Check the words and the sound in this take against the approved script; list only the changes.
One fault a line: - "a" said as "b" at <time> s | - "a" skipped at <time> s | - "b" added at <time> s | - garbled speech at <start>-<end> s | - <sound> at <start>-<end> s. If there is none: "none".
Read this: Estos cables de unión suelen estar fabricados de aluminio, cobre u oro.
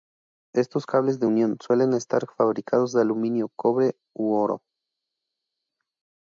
none